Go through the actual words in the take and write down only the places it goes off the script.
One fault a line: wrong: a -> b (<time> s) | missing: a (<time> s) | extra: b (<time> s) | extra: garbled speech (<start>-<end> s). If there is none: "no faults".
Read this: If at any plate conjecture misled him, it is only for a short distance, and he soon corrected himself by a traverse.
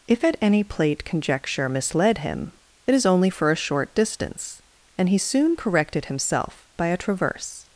no faults